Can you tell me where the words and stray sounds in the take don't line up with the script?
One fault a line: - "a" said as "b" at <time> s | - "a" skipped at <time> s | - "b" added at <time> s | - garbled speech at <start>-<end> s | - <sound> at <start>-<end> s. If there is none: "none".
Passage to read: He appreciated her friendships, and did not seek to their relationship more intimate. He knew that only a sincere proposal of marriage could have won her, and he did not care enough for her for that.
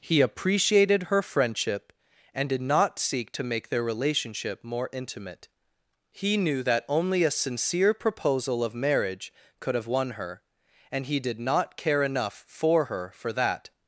- "friendships" said as "friendship" at 1.2 s
- "make" added at 3.4 s